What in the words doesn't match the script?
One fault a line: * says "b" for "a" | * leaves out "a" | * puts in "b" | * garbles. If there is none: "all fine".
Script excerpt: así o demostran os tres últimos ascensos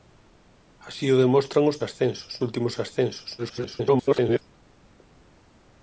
* says "ascensos" for "tres"
* garbles